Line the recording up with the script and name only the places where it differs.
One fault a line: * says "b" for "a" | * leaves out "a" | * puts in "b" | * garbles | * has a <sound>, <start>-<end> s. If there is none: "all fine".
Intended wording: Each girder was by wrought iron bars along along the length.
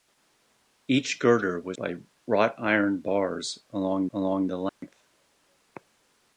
* has a dropout, 4.7-4.8 s